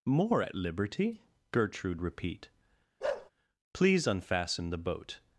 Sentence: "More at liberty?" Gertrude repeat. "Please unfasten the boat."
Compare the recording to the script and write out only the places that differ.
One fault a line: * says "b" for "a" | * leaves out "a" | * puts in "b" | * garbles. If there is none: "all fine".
all fine